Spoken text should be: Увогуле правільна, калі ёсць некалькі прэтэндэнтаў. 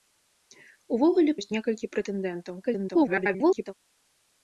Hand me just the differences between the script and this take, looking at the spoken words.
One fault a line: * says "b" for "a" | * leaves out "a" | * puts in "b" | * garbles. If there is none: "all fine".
* leaves out "правільна калі"
* garbles